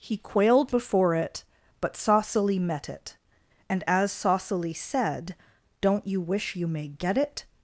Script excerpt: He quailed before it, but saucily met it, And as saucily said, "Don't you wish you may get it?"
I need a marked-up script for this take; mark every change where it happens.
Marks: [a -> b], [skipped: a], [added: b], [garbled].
He quailed before it, but saucily met it, And as saucily said, "Don't you wish you may get it?"